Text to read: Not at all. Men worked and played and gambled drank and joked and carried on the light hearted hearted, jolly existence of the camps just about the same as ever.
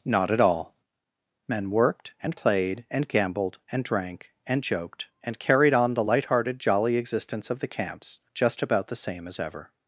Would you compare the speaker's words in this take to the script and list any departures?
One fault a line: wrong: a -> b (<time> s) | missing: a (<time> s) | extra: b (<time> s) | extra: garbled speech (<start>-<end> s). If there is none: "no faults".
extra: and (3.7 s)
missing: hearted (6.6 s)